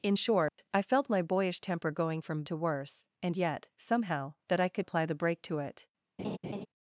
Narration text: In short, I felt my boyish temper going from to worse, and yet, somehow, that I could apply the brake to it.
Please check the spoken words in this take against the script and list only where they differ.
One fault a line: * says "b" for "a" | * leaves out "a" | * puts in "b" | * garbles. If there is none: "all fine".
all fine